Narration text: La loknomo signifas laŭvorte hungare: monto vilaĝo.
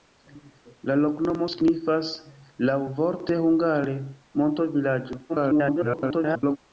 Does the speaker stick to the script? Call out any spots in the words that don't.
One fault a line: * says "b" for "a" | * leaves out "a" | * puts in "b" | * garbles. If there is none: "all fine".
* garbles